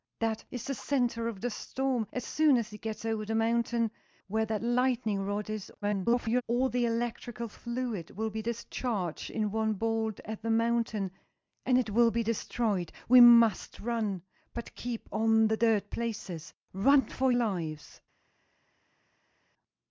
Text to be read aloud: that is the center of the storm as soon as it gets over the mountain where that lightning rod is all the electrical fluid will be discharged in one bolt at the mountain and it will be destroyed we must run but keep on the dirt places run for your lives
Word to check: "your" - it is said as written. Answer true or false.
false